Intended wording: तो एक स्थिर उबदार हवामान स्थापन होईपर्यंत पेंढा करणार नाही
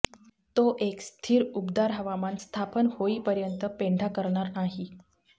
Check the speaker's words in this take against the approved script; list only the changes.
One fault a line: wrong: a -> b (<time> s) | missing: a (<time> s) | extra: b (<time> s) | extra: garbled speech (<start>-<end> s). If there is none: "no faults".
no faults